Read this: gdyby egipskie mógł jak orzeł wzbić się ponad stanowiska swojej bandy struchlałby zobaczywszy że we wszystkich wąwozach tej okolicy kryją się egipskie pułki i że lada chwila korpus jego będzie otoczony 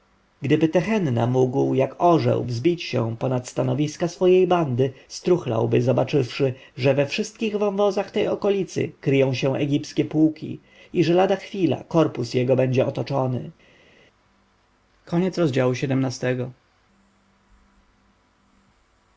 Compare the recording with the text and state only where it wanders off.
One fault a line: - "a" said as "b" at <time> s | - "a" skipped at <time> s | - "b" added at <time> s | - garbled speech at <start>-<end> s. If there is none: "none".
- "egipskie" said as "tehenna" at 0.7 s